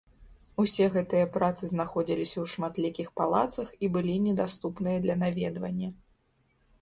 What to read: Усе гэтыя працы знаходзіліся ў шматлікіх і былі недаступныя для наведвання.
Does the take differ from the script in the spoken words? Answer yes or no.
yes